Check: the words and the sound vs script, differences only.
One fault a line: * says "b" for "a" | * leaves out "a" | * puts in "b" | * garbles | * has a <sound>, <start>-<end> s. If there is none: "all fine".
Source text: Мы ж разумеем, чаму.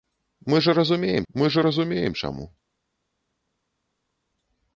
* puts in "мы ж разумеем"